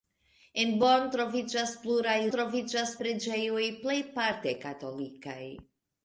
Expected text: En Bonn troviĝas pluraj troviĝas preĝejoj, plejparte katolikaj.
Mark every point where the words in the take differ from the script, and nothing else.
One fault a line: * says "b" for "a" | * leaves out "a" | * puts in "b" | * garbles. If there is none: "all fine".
all fine